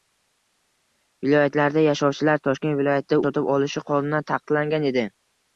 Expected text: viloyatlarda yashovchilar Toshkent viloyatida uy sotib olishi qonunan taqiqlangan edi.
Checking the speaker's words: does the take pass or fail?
fail